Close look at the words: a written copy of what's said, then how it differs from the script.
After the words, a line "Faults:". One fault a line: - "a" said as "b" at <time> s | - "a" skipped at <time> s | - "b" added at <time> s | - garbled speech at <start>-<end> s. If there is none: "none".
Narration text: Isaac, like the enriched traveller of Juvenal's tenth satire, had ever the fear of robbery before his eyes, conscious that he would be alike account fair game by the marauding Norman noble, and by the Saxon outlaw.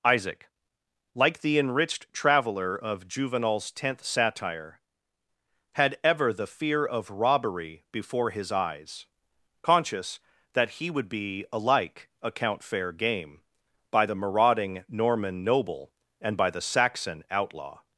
Isaac, like the enriched traveller of Juvenal's tenth satire, had ever the fear of robbery before his eyes, conscious that he would be alike account fair game by the marauding Norman noble, and by the Saxon outlaw.
Faults:
none